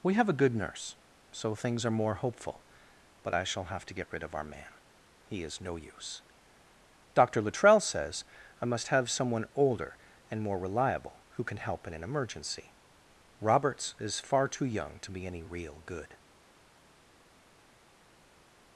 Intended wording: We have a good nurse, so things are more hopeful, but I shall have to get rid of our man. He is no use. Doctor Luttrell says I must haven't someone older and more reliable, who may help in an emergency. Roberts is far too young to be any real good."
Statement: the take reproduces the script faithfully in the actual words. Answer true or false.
false